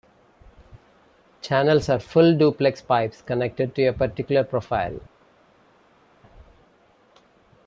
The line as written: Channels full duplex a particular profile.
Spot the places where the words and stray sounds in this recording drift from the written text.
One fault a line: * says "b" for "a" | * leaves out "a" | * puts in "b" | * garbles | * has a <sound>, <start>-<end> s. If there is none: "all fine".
* puts in "are"
* puts in "pipes connected to"